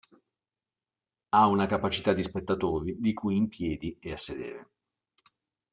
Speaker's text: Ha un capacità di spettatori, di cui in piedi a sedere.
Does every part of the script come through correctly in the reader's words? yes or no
no